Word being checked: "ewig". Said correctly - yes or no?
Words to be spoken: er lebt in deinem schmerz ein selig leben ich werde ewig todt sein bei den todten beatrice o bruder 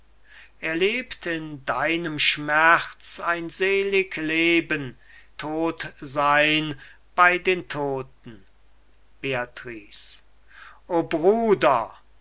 no